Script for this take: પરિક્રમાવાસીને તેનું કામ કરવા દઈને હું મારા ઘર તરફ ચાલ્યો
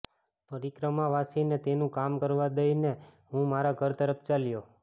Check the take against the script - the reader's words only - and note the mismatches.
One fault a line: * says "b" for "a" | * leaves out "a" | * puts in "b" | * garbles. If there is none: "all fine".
all fine